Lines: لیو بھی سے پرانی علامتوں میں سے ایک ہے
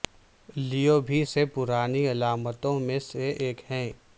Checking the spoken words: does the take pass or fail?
pass